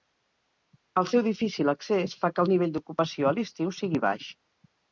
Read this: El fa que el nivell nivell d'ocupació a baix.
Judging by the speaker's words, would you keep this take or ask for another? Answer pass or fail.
fail